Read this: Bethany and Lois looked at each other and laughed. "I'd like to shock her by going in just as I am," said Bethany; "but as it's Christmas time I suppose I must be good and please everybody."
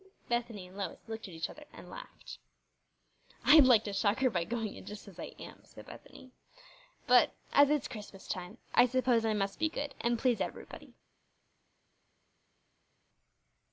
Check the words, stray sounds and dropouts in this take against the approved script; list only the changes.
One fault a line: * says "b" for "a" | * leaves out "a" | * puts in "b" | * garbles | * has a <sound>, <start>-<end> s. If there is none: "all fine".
all fine